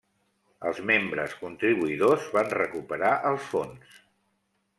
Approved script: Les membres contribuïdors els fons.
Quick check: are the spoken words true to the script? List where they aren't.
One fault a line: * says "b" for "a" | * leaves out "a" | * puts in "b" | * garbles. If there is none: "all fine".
* says "Els" for "Les"
* puts in "van recuperar"